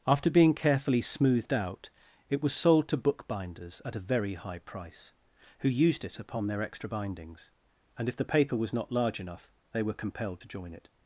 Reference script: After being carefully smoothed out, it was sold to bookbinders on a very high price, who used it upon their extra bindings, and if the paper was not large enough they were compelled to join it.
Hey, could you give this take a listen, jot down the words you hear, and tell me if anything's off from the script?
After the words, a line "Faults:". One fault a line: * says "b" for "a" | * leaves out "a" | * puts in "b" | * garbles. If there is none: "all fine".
After being carefully smoothed out, it was sold to bookbinders at a very high price, who used it upon their extra bindings, and if the paper was not large enough they were compelled to join it.
Faults:
* says "at" for "on"